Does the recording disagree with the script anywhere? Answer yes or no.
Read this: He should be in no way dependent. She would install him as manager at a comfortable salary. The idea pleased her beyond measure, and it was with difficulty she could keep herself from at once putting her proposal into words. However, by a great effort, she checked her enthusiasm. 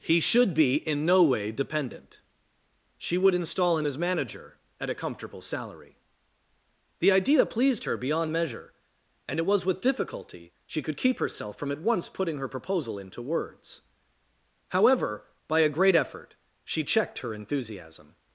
no